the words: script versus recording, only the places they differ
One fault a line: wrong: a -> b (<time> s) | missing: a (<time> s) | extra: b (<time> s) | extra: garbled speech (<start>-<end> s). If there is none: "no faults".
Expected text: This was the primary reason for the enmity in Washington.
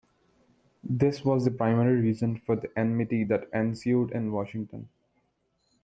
extra: that ensued (3.2 s)